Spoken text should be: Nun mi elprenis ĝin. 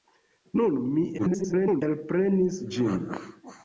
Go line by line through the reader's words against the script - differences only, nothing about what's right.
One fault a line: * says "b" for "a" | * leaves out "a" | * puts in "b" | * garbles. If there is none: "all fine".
* garbles